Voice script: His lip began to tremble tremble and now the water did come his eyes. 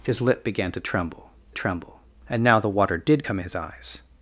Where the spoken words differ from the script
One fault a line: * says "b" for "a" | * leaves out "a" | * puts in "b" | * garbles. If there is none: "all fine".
all fine